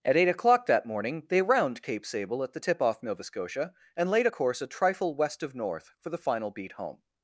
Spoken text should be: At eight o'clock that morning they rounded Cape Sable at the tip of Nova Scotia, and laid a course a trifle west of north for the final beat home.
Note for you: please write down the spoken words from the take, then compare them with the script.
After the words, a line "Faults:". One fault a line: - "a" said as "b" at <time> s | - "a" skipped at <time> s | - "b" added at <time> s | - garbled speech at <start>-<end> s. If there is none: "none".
At eight o'clock that morning they round Cape Sable at the tip off Nova Scotia, and laid a course a trifle west of north for the final beat home.
Faults:
- "rounded" said as "round" at 1.4 s
- "of" said as "off" at 2.8 s